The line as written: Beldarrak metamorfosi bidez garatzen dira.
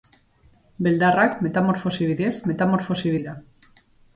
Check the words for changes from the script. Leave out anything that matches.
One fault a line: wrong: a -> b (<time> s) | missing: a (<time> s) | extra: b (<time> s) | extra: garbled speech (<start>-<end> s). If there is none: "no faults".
wrong: garatzen -> metamorfosi (2.5 s)